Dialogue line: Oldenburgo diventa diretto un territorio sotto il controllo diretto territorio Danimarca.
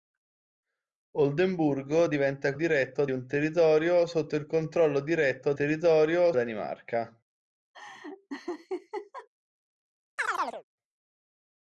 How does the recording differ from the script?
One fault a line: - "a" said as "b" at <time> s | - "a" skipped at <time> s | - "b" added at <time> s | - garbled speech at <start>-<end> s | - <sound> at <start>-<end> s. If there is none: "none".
- laugh at 7.7-9.3 s
- chirp at 10.2-10.6 s